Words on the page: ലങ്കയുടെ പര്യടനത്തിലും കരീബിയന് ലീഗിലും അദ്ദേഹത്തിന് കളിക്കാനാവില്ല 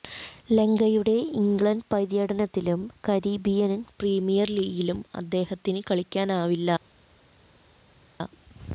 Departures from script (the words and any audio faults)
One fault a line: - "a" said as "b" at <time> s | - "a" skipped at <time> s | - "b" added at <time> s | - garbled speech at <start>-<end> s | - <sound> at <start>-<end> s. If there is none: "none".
- "ഇംഗ്ലണ്ട്" added at 1.4 s
- "പ്രീമിയര്" added at 3.9 s